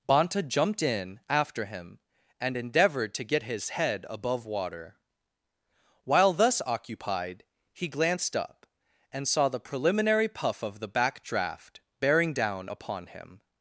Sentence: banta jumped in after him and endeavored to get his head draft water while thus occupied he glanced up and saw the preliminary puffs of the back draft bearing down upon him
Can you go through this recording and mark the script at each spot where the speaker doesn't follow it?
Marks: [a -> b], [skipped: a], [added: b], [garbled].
banta jumped in after him and endeavored to get his head [draft -> above] water while thus occupied he glanced up and saw the preliminary [puffs -> puff] of the back draft bearing down upon him